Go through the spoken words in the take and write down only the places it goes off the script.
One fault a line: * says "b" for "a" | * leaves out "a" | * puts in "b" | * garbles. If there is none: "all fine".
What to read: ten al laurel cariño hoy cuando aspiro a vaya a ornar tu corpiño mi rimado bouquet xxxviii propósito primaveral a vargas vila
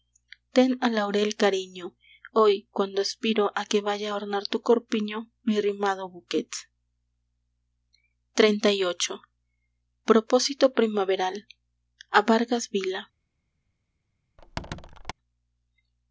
* puts in "que"